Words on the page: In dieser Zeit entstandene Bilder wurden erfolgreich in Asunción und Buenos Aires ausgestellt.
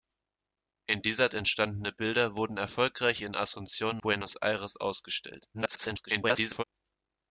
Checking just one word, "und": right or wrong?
wrong